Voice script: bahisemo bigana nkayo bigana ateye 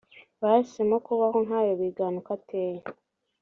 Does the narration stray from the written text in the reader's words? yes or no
yes